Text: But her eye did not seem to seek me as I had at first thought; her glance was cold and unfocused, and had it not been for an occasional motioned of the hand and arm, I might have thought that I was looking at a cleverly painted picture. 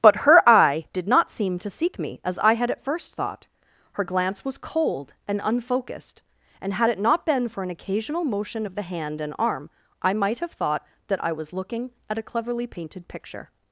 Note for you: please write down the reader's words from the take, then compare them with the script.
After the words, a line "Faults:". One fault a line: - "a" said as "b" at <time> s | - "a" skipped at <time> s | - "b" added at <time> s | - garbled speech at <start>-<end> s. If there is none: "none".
But her eye did not seem to seek me as I had at first thought; her glance was cold and unfocused, and had it not been for an occasional motion of the hand and arm, I might have thought that I was looking at a cleverly painted picture.
Faults:
- "motioned" said as "motion" at 8.2 s